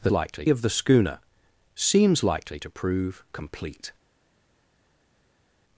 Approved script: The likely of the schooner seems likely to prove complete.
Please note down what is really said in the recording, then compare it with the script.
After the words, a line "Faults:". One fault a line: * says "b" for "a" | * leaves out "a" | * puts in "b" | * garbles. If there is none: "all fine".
The likely of the schooner seems likely to prove complete.
Faults:
all fine